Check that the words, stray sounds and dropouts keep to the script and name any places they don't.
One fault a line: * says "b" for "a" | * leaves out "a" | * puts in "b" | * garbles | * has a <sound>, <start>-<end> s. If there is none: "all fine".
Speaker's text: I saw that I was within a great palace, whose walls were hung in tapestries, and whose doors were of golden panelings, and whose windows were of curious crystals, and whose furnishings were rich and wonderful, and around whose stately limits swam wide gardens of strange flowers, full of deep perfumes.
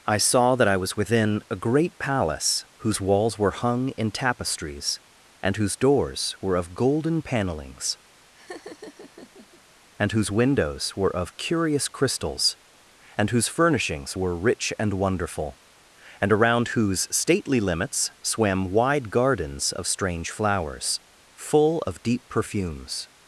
* has a laugh, 8.3-9.6 s